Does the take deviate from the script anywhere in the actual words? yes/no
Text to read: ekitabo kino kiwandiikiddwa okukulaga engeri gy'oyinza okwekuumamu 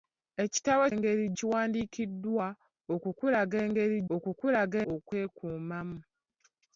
yes